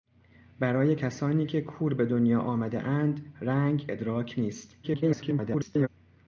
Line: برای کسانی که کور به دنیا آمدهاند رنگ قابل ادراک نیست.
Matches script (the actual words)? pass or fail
fail